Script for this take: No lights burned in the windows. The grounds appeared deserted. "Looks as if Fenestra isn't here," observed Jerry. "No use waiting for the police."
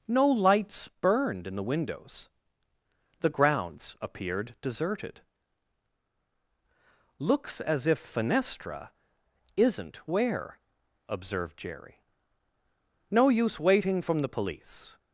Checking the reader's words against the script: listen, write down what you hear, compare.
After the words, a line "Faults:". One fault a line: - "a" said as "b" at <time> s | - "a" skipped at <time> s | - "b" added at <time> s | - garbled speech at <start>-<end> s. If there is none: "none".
No lights burned in the windows. The grounds appeared deserted. "Looks as if Fenestra isn't where," observed Jerry. "No use waiting from the police."
Faults:
- "here" said as "where" at 10.1 s
- "for" said as "from" at 14.0 s